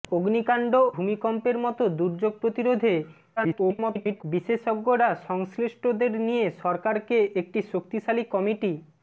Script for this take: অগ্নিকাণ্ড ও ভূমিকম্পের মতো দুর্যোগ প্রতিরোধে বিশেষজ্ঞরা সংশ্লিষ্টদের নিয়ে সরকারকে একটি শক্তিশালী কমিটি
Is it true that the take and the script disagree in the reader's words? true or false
true